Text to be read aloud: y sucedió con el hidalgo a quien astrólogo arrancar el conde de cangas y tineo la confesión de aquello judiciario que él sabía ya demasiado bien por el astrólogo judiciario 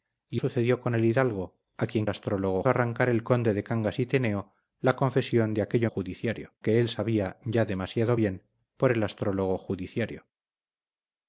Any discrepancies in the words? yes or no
no